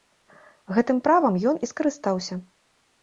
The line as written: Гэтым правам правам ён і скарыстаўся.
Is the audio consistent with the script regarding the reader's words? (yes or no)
no